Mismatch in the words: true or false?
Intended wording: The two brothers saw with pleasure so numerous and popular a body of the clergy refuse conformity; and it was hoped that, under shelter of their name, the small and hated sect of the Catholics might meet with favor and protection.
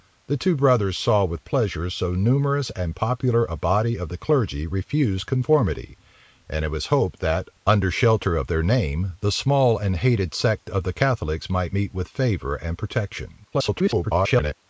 true